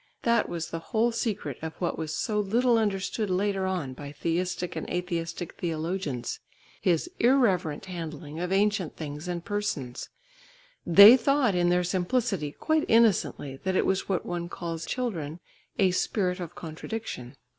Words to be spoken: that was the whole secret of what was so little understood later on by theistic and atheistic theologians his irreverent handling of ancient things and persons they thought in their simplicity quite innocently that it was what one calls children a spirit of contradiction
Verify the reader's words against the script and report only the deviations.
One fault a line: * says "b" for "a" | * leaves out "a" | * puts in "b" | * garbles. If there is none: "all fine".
all fine